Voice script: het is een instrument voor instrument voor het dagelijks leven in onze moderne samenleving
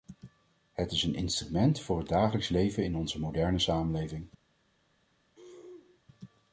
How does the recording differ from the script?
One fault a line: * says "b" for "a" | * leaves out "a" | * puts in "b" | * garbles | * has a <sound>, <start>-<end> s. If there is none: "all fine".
* leaves out "instrument voor"
* has a throat clearing, 5.3-6.0 s